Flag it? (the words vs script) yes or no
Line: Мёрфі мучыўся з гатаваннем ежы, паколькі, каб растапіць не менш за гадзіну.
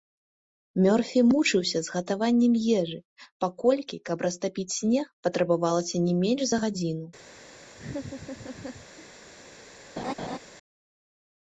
yes